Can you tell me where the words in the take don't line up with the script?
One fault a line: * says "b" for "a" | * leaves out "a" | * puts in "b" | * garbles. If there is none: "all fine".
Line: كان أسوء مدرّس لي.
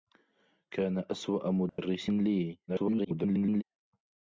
* garbles